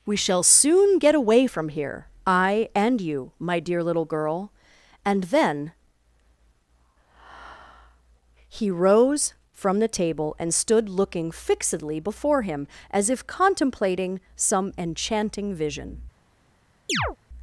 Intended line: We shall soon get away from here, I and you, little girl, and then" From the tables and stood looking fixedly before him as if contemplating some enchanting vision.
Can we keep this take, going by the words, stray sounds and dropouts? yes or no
no